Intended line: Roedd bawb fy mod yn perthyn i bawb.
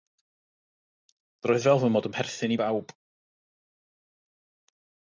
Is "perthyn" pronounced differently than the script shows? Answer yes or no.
no